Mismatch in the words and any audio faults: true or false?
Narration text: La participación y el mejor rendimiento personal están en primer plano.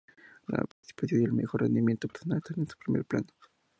true